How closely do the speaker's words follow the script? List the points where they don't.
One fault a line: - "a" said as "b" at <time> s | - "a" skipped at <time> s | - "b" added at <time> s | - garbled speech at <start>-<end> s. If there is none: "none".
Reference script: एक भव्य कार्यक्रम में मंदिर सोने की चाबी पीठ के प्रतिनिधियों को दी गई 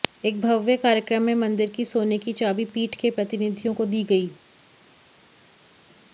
- "की" added at 1.7 s